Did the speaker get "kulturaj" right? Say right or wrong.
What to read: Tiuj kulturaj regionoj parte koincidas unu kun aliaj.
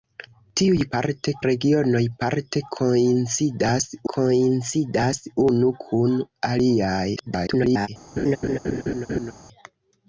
wrong